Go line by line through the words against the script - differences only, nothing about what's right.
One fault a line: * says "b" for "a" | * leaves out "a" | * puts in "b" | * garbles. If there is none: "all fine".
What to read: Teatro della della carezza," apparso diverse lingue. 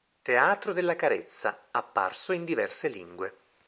* leaves out "della"
* puts in "in"